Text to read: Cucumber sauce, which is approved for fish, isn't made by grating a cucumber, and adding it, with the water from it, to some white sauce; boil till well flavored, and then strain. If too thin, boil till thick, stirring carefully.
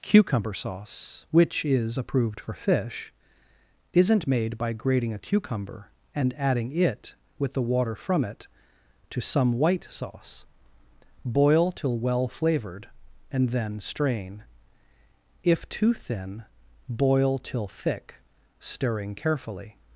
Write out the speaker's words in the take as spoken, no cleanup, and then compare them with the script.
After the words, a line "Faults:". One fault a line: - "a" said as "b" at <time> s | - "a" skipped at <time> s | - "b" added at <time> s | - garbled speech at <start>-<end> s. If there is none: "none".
Cucumber sauce, which is approved for fish, isn't made by grating a cucumber, and adding it, with the water from it, to some white sauce; boil till well flavored, and then strain. If too thin, boil till thick, stirring carefully.
Faults:
none